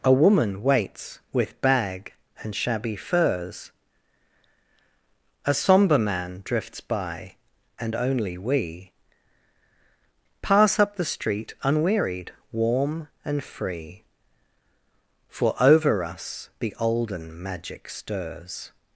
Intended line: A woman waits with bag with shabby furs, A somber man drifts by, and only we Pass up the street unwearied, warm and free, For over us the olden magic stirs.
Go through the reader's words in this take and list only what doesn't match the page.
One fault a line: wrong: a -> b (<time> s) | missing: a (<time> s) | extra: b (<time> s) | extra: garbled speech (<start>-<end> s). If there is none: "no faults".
wrong: with -> and (2.4 s)